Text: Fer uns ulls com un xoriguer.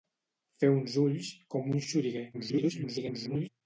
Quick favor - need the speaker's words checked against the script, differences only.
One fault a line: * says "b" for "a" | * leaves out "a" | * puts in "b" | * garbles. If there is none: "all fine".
* garbles